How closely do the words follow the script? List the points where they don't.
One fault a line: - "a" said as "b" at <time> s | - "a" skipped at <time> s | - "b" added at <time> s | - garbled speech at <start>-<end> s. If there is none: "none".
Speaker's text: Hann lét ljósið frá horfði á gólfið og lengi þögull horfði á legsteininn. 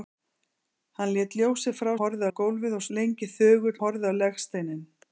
none